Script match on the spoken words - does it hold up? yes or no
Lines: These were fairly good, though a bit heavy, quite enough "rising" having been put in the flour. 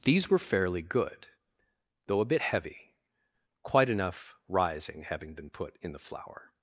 yes